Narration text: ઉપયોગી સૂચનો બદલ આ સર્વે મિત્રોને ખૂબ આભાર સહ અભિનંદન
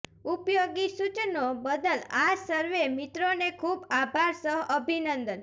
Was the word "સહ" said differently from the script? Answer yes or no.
no